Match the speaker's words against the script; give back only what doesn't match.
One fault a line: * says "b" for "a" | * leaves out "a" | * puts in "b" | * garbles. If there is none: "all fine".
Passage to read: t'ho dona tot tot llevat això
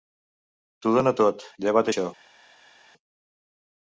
* leaves out "tot"